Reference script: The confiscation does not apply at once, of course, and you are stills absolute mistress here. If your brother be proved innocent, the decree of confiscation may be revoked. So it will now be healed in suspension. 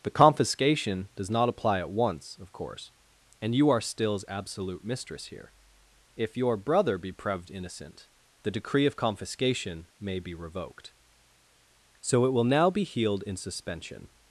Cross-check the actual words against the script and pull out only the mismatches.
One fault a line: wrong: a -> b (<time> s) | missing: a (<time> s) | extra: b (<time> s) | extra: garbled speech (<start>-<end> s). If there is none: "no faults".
no faults